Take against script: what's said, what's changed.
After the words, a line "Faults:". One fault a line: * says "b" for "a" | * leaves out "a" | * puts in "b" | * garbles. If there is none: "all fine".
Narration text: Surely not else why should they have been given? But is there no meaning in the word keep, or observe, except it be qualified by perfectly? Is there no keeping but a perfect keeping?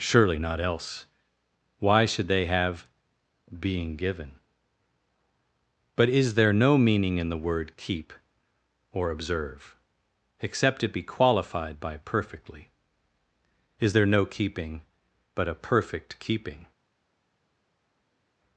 Surely not else why should they have being given? But is there no meaning in the word keep, or observe, except it be qualified by perfectly? Is there no keeping but a perfect keeping?
Faults:
* says "being" for "been"